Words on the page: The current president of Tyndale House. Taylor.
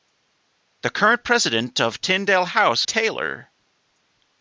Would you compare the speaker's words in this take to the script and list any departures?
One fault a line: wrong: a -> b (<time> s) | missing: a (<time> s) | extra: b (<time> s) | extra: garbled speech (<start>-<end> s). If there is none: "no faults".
no faults